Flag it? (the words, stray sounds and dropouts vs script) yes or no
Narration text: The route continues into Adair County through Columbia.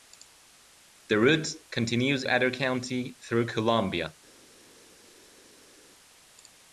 yes